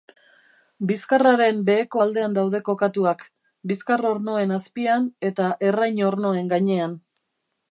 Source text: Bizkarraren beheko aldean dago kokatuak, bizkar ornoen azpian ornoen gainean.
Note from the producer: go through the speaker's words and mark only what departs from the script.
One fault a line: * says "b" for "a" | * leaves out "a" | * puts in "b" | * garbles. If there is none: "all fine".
* says "daude" for "dago"
* puts in "eta errain"